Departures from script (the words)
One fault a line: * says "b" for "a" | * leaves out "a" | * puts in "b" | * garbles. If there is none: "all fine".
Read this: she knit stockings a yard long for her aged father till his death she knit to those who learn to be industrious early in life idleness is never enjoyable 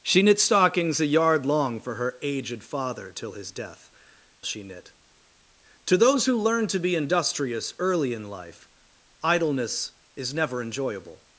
all fine